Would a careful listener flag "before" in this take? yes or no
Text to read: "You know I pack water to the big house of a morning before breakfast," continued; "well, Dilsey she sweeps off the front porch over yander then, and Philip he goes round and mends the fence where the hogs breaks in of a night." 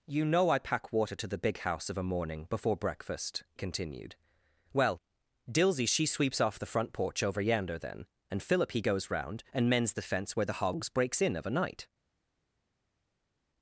no